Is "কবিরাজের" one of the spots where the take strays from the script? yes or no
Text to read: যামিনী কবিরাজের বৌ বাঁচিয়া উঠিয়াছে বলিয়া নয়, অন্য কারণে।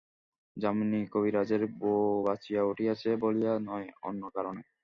no